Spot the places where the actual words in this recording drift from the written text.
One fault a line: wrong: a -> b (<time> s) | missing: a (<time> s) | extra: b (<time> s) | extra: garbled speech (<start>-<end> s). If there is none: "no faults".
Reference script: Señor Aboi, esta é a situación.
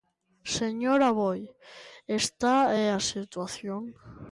no faults